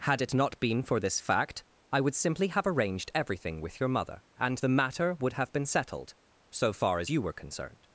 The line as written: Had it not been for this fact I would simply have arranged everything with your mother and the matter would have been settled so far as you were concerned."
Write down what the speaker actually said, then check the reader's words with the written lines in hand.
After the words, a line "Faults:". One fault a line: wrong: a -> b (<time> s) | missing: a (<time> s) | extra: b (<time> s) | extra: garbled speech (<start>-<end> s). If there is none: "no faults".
Had it not been for this fact I would simply have arranged everything with your mother and the matter would have been settled so far as you were concerned."
Faults:
no faults